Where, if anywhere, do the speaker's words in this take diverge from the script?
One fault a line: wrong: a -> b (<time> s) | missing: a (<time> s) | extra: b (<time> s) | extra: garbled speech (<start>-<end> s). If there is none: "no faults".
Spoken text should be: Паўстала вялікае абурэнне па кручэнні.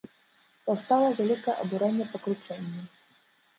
no faults